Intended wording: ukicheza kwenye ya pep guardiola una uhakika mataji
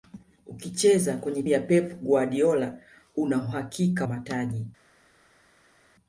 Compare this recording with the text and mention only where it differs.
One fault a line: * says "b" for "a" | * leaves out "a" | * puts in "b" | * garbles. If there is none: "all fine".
all fine